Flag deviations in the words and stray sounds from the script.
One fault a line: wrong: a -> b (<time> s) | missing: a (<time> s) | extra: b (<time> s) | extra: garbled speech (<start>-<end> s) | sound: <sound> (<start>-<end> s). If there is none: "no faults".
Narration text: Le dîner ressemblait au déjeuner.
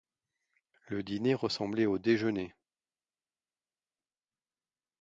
no faults